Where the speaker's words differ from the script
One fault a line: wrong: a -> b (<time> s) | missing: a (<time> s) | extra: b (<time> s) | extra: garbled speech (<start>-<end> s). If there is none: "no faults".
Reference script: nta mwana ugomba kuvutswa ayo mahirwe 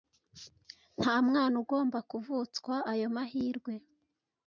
no faults